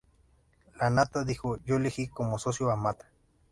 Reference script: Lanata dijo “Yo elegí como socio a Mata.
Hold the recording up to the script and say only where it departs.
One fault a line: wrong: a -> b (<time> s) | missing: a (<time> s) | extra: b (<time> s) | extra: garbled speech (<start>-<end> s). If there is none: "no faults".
no faults